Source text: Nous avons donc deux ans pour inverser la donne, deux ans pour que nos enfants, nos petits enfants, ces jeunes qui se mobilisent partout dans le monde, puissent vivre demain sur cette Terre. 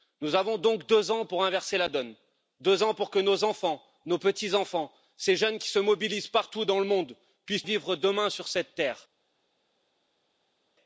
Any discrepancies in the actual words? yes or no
no